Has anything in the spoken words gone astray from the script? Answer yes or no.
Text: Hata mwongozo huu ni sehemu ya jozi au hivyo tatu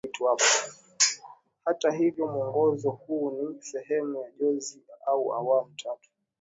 yes